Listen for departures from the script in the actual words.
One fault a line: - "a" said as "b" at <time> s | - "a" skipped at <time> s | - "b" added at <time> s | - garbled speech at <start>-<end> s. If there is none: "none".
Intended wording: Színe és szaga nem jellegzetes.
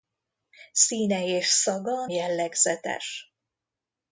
- "nem" skipped at 2.0 s